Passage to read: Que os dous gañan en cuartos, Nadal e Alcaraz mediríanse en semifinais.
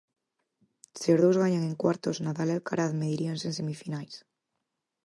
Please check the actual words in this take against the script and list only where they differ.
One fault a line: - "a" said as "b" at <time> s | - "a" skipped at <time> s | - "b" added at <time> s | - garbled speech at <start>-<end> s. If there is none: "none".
- "Que" said as "Se" at 1.0 s